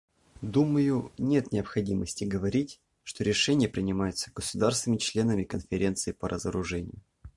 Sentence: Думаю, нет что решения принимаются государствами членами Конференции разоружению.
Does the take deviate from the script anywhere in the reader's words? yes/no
yes